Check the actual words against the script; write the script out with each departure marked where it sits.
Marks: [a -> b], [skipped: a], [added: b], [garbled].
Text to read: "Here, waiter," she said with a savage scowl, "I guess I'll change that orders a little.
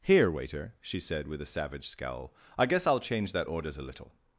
"Here, waiter," she said with a savage scowl, "I guess I'll change that orders a little.